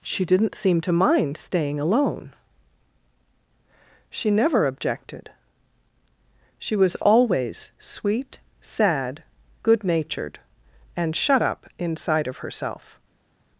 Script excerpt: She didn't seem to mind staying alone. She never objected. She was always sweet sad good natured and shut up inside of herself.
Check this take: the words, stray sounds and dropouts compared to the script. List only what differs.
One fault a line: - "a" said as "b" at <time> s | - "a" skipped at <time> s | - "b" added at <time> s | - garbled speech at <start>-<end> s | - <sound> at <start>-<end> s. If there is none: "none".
none